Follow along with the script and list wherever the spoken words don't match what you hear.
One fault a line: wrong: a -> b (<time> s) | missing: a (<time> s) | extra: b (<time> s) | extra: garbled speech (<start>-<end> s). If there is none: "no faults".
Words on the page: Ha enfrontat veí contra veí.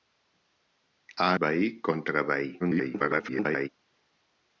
missing: enfrontat (1.3 s)
extra: garbled speech (2.6-3.7 s)